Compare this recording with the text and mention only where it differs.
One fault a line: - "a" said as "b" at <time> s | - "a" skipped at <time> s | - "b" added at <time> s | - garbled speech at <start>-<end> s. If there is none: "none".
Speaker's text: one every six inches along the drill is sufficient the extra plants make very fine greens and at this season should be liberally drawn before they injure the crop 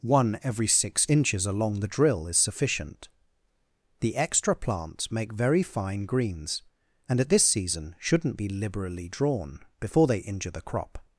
- "should" said as "shouldn't" at 8.0 s